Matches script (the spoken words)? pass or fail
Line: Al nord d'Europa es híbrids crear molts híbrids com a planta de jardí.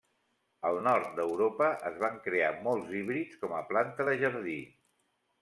fail